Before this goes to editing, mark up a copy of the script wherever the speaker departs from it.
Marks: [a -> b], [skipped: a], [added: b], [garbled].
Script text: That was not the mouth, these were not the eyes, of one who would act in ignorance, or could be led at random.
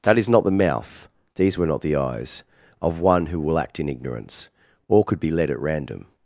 That [was -> is] not the mouth, these were not the eyes, of one who [would -> will] act in ignorance, or could be led at random.